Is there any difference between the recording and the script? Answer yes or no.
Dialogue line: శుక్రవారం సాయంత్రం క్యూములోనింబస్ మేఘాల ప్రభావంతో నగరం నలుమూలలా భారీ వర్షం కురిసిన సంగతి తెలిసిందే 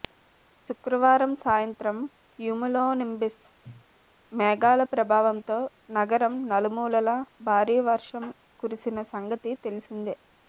no